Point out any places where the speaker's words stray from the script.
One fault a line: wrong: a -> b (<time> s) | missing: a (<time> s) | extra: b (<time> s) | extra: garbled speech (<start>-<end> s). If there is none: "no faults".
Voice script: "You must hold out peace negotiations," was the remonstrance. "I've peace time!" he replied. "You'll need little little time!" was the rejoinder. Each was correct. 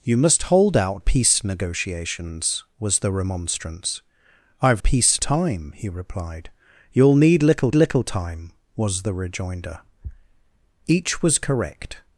no faults